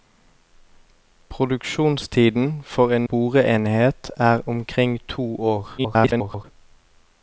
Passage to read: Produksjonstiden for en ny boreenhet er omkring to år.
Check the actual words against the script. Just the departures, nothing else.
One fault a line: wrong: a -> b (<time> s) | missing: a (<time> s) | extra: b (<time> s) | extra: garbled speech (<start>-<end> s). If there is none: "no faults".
missing: ny (3.1 s)
extra: garbled speech (5.8-6.4 s)